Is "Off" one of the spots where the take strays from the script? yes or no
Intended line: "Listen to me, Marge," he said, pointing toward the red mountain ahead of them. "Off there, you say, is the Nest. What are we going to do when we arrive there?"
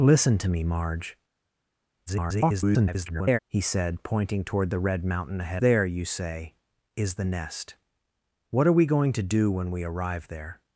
yes